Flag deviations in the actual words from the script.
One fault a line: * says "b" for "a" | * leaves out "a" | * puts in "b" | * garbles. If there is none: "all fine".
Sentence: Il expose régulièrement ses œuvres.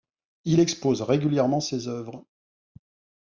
all fine